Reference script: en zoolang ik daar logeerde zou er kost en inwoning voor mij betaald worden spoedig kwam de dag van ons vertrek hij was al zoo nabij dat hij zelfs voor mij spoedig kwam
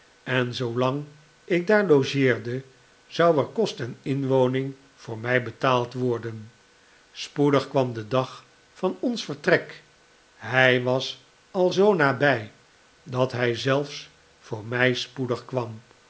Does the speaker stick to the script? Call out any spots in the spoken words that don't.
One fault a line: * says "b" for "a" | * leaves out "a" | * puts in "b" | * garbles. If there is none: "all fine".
all fine